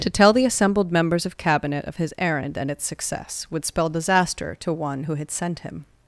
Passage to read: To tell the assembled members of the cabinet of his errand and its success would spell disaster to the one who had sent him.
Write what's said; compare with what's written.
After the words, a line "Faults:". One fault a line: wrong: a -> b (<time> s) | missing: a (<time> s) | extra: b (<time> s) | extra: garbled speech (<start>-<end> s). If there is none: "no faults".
To tell the assembled members of cabinet of his errand and its success would spell disaster to one who had sent him.
Faults:
missing: the (1.4 s)
missing: the (4.7 s)